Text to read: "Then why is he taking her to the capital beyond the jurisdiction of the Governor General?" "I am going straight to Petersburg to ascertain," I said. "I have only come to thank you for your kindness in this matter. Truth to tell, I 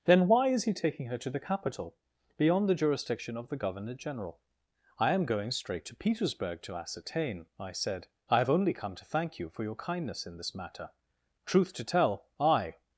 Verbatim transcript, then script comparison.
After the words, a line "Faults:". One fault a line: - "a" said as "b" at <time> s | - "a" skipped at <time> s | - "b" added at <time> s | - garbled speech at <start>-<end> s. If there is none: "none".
"Then why is he taking her to the capital beyond the jurisdiction of the Governor General?" "I am going straight to Petersburg to ascertain," I said. "I have only come to thank you for your kindness in this matter. Truth to tell, I
Faults:
none